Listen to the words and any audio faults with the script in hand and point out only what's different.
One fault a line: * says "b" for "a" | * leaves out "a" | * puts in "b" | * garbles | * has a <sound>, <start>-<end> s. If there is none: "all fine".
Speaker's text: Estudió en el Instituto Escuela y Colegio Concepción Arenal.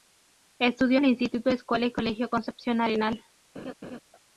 * leaves out "en"
* has a laugh, 3.5-4.0 s